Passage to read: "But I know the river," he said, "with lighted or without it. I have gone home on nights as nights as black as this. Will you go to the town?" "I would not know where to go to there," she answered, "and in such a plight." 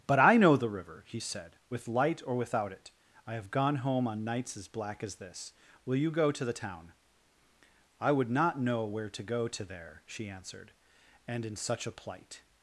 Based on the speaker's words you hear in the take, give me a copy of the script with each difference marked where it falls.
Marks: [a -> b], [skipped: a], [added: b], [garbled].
"But I know the river," he said, "with [lighted -> light] or without it. I have gone home on nights as [skipped: nights as] black as this. Will you go to the town?" "I would not know where to go to there," she answered, "and in such a plight."